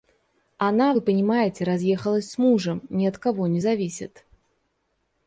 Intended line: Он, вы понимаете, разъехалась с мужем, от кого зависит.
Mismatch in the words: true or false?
true